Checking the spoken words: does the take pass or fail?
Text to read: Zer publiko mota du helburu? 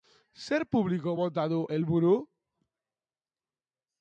pass